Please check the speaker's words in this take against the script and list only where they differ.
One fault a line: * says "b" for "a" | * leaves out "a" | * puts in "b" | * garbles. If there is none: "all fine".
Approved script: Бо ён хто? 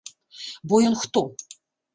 all fine